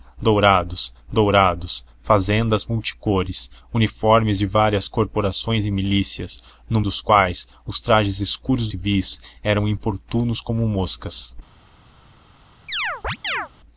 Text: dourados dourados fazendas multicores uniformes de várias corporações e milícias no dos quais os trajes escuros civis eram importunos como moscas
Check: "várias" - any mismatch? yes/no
no